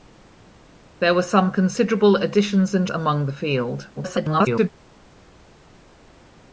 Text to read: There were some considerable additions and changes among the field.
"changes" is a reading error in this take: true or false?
true